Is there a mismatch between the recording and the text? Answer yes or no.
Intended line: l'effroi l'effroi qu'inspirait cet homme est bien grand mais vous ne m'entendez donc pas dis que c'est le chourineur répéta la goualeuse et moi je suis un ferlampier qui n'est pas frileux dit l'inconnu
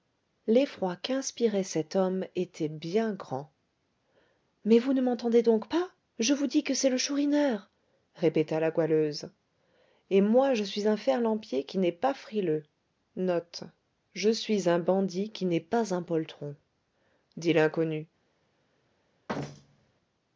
yes